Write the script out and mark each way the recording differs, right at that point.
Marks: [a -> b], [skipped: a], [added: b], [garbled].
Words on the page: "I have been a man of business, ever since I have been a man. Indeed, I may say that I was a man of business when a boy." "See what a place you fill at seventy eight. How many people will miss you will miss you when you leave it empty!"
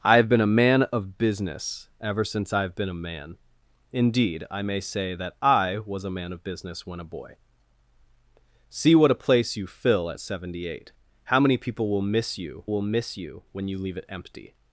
"I have been a man of business, ever since I have been a man. Indeed, I may say that I was a man of business when a boy." "See what a place you fill at seventy eight. How many people will miss you will miss you when you leave it empty!"